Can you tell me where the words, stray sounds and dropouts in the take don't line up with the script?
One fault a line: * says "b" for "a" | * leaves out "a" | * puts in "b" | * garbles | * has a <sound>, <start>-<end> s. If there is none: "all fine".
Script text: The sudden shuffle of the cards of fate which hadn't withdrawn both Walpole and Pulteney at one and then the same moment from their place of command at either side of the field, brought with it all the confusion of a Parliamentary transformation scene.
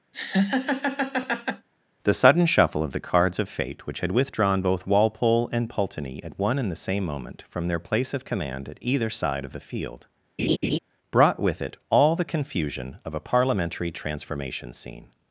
* has a laugh, 0.1-1.7 s
* says "had" for "hadn't"
* leaves out "then"
* has a laugh, 10.4-10.8 s